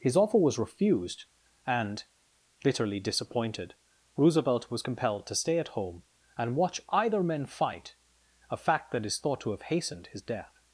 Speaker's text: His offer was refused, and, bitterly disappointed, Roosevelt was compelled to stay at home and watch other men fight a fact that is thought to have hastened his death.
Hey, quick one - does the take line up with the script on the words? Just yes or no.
no